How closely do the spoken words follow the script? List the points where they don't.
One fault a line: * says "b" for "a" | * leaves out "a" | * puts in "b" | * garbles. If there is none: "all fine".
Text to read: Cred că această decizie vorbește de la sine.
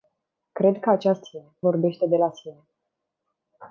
* says "sine" for "decizie"